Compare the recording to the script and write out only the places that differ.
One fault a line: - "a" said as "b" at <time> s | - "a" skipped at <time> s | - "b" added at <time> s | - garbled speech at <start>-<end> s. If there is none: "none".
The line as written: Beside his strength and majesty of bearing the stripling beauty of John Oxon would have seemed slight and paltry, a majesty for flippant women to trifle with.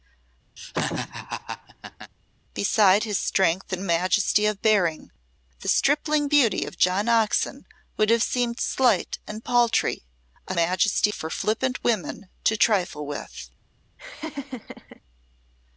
none